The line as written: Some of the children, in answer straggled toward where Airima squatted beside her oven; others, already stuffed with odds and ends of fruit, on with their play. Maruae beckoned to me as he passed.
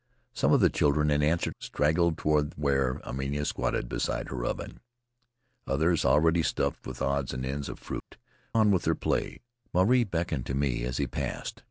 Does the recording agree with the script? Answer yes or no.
yes